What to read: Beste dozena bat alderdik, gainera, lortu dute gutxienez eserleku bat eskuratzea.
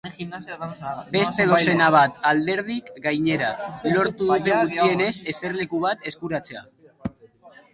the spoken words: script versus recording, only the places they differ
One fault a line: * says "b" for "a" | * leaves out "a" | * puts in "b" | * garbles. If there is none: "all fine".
all fine